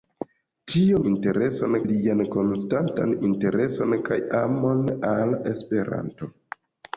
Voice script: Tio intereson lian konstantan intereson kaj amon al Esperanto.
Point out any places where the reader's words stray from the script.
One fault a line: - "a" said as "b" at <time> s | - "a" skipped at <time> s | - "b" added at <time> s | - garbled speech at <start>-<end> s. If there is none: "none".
none